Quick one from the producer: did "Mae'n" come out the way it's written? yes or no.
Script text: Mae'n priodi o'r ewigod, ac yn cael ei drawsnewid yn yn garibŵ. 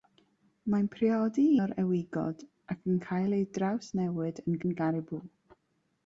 yes